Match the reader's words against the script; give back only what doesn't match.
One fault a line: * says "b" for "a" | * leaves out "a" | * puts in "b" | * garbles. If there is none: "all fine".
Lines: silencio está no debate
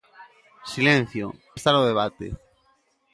all fine